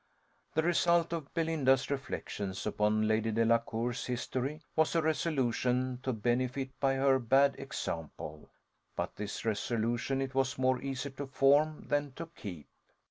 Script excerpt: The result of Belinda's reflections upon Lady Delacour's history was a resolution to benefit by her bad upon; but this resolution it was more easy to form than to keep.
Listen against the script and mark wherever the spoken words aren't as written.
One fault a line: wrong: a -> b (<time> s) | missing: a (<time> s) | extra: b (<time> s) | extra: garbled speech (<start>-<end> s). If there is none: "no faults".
wrong: upon -> example (7.6 s)